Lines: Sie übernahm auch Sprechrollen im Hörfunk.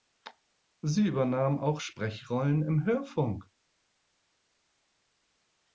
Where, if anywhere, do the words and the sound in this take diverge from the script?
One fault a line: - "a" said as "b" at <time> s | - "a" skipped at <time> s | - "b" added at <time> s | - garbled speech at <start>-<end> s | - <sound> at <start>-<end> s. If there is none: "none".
none